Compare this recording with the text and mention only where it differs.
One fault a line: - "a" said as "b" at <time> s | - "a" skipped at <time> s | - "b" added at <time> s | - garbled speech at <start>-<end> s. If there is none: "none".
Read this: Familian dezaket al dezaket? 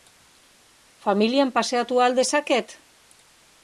- "dezaket" said as "paseatu" at 1.6 s